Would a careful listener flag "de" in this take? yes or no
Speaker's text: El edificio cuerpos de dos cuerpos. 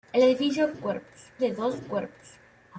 no